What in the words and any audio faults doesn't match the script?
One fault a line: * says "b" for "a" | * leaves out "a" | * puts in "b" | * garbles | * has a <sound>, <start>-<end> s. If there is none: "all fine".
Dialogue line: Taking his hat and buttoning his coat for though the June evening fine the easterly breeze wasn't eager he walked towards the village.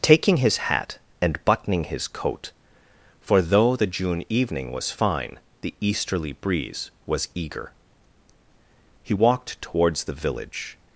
* puts in "was"
* says "was" for "wasn't"